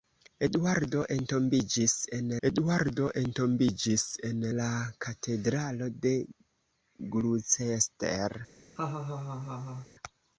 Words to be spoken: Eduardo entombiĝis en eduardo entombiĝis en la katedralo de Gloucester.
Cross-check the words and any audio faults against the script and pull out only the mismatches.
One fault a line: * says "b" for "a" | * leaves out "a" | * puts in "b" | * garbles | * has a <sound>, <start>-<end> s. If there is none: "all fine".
* has a laugh, 8.8-9.9 s